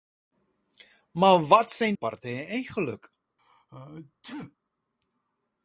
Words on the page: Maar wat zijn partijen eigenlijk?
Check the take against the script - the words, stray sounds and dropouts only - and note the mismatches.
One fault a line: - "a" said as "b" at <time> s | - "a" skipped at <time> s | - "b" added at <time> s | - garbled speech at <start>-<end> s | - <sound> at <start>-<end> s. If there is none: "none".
- sneeze at 3.4-4.6 s